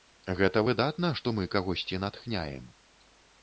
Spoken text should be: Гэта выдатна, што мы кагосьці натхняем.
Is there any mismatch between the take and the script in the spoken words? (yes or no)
no